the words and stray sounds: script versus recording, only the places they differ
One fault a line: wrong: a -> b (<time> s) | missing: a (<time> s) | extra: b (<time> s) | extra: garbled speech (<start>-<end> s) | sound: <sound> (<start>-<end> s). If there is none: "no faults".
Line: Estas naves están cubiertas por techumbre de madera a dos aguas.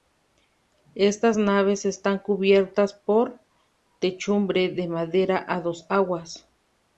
no faults